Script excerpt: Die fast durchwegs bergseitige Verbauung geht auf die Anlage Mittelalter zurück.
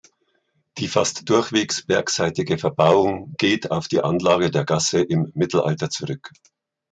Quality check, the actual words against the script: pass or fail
fail